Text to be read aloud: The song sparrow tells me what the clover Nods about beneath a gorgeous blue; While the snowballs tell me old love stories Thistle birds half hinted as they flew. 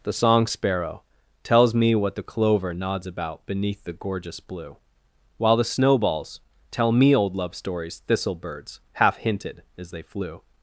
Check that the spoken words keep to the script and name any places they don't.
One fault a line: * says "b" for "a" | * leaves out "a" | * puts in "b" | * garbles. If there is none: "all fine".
* says "the" for "a"